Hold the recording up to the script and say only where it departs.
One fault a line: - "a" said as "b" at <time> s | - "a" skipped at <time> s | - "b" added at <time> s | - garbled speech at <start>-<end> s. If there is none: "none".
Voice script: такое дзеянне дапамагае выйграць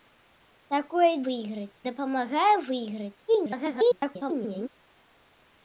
- "дзеянне" said as "выйграць" at 1.3 s
- garbled speech at 3.3-4.7 s